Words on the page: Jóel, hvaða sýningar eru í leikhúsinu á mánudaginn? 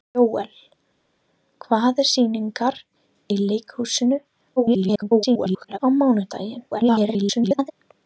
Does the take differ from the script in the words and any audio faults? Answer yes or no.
yes